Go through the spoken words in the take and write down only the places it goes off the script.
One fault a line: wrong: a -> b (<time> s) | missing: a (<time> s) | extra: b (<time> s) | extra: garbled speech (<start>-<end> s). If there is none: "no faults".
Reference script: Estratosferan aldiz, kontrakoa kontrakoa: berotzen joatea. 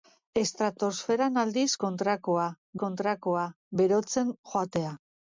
no faults